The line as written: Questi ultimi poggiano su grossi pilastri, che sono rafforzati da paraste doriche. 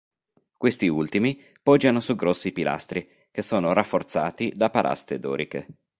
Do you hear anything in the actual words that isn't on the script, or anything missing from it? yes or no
no